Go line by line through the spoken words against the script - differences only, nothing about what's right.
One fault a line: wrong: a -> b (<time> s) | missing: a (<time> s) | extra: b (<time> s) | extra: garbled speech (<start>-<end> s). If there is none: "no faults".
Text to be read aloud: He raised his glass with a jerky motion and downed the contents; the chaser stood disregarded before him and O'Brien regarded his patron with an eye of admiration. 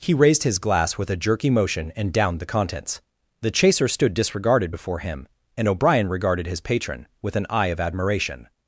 no faults